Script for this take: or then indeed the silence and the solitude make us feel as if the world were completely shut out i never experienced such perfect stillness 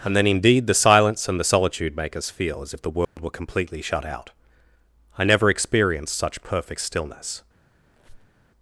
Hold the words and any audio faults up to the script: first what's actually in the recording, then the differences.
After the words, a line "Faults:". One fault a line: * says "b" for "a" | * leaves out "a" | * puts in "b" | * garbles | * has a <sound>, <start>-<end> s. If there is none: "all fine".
and then indeed the silence and the solitude make us feel as if the world were completely shut out i never experienced such perfect stillness
Faults:
* says "and" for "or"
* has a dropout, 3.0-3.2 s
* has a squeak, 7.9-8.5 s